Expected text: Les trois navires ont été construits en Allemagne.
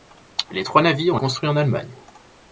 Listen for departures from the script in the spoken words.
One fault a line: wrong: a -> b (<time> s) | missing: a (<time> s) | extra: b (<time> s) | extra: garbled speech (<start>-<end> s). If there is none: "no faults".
missing: été (1.2 s)